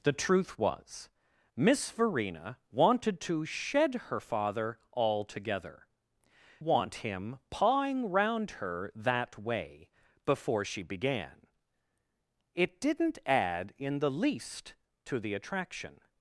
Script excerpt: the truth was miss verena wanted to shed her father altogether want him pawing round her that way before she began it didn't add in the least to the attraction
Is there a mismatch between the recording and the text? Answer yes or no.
no